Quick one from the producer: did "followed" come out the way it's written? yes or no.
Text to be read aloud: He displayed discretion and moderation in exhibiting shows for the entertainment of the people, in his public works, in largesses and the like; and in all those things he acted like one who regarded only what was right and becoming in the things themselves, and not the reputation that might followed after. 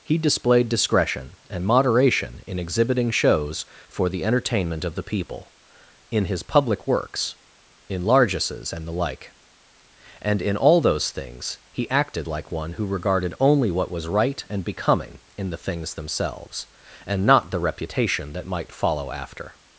no